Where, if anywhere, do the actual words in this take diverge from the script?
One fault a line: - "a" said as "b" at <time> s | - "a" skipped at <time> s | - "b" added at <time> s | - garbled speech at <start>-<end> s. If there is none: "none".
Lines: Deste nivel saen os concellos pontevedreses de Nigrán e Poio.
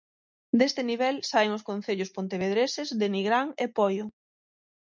none